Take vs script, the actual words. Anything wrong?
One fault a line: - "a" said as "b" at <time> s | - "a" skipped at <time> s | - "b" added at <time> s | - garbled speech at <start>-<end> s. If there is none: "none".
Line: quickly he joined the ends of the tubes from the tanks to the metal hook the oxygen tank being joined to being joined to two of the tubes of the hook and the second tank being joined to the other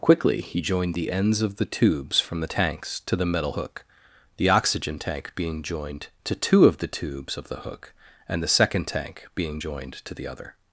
- "being joined to" skipped at 6.4 s